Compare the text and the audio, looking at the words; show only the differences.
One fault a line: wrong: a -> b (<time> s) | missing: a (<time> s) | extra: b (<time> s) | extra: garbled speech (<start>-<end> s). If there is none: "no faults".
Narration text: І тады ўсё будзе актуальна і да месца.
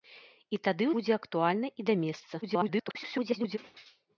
missing: ўсё (0.9 s)
extra: garbled speech (2.4-3.6 s)